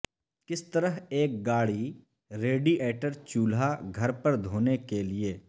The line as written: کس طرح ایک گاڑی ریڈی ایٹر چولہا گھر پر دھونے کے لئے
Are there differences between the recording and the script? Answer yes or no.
no